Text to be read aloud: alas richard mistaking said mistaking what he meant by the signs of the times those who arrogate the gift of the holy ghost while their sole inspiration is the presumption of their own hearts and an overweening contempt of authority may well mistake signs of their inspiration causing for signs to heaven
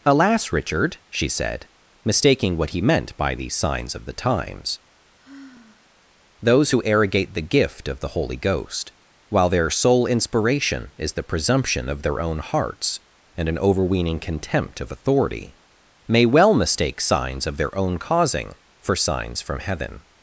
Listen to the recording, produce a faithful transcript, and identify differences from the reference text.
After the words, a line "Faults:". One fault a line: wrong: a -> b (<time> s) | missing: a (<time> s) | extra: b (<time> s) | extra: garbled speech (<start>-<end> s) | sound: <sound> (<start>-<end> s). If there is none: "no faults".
alas richard she said mistaking what he meant by the signs of the times those who arrogate the gift of the holy ghost while their sole inspiration is the presumption of their own hearts and an overweening contempt of authority may well mistake signs of their own causing for signs from heaven
Faults:
wrong: mistaking -> she (1.1 s)
sound: sigh (5.2-6.0 s)
wrong: inspiration -> own (17.8 s)
wrong: to -> from (19.4 s)